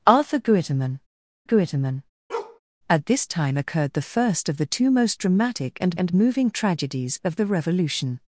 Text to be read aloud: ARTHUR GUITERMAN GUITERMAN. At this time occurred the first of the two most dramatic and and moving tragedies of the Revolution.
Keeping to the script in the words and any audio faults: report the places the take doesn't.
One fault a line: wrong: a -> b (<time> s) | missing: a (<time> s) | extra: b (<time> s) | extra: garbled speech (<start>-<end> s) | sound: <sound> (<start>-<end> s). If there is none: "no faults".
sound: bark (2.3-2.6 s)